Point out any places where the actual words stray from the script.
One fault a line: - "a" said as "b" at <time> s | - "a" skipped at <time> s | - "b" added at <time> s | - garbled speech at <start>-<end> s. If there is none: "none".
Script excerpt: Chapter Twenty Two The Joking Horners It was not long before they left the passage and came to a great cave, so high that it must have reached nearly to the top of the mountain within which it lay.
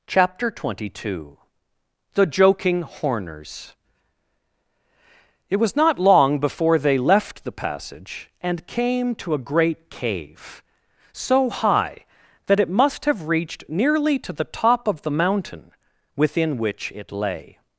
none